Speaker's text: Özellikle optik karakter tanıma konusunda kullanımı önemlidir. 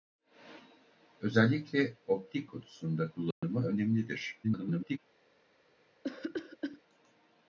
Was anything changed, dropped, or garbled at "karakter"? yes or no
yes